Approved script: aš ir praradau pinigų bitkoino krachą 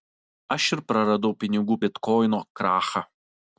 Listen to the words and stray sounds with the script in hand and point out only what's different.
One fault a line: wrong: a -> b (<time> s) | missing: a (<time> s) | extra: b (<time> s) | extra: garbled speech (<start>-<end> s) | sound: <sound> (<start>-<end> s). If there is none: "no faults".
no faults